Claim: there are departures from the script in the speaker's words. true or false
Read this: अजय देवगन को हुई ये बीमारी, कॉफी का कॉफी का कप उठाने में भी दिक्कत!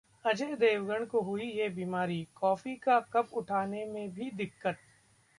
true